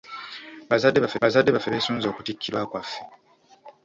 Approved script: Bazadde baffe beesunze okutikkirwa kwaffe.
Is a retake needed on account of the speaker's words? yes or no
yes